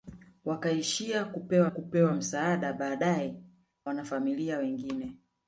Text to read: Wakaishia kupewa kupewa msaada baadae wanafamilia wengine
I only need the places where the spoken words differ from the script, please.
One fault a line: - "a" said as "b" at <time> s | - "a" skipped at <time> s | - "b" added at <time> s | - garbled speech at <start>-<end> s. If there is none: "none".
none